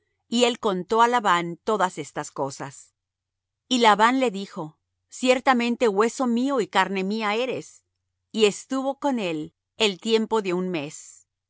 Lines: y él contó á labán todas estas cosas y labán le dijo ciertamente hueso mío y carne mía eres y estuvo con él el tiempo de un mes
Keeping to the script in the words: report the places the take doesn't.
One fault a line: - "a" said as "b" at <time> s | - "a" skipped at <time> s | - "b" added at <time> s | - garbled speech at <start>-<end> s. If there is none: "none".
none